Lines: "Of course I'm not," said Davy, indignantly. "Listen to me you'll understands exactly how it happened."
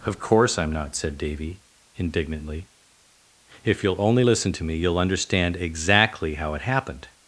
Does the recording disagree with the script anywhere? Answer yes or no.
yes